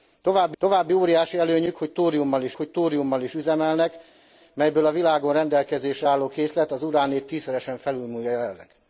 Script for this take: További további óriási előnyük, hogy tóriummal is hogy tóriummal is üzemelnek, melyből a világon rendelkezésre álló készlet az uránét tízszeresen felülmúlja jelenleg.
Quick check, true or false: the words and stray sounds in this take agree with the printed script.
true